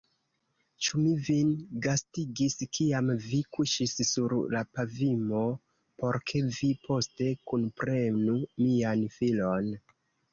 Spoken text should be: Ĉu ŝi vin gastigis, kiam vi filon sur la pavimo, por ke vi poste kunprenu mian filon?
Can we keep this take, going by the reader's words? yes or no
no